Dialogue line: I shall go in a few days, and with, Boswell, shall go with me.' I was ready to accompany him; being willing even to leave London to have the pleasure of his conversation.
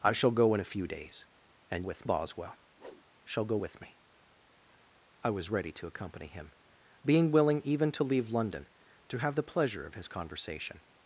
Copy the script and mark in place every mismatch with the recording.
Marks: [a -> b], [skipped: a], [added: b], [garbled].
I shall go in a few days, and with, Boswell, shall go with me.' I was ready to accompany him; being willing even to leave London to have the pleasure of his conversation.